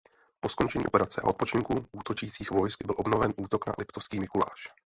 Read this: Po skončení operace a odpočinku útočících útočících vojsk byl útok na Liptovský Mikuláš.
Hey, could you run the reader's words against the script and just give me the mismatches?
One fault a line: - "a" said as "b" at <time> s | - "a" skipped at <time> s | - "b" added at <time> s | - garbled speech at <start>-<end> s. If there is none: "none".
- "útočících" skipped at 2.5 s
- "obnoven" added at 3.0 s